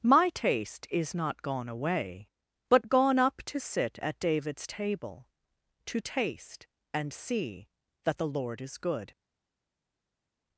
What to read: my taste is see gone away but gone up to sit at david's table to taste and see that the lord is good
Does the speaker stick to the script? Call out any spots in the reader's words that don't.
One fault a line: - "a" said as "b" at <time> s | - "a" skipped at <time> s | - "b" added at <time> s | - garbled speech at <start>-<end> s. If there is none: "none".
- "see" said as "not" at 1.1 s